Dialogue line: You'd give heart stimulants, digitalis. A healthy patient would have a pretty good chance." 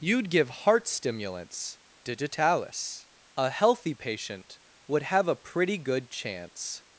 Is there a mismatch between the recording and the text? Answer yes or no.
no